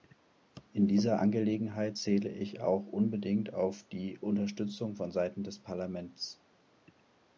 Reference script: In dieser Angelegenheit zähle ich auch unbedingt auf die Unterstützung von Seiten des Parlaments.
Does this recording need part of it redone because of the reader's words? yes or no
no